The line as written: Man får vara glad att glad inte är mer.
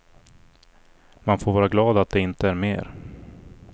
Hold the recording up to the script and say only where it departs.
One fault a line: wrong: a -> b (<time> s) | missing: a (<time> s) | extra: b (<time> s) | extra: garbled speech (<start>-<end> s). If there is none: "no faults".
wrong: glad -> det (2.1 s)